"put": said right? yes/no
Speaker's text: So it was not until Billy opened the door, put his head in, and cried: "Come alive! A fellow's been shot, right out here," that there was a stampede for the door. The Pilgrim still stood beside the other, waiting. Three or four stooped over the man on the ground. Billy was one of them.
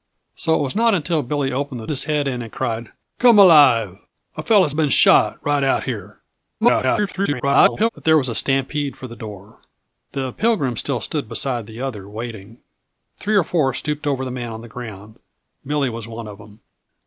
no